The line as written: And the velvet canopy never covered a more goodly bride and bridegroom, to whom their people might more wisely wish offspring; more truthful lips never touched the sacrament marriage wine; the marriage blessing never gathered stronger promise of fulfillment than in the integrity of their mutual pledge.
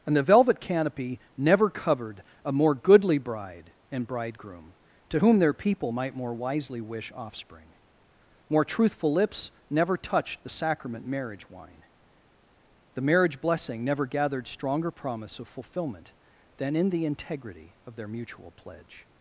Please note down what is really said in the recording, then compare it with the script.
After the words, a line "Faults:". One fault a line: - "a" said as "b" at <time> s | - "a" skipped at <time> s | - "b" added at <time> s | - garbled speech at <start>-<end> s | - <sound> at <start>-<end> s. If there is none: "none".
And the velvet canopy never covered a more goodly bride and bridegroom, to whom their people might more wisely wish offspring; more truthful lips never touched the sacrament marriage wine; the marriage blessing never gathered stronger promise of fulfillment than in the integrity of their mutual pledge.
Faults:
none